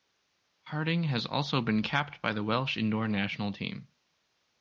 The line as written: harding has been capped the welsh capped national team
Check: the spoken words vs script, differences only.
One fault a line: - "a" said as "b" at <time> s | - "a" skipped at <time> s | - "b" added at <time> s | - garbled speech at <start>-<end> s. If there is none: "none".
- "also" added at 1.3 s
- "by" added at 2.2 s
- "capped" said as "indoor" at 2.8 s